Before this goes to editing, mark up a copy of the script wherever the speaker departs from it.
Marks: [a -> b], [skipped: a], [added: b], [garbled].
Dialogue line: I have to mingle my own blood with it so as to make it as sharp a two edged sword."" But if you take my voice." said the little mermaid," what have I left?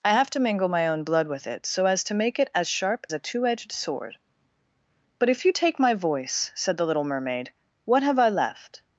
I have to mingle my own blood with it so as to make it as sharp a two edged sword."" But if you take my voice." said the little mermaid," what have I left?